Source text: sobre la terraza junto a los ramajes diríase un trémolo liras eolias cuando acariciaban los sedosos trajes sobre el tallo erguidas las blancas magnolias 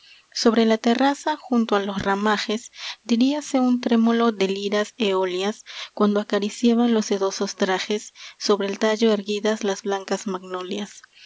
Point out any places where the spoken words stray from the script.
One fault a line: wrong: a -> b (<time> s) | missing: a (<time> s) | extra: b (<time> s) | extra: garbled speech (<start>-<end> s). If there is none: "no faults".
extra: de (4.3 s)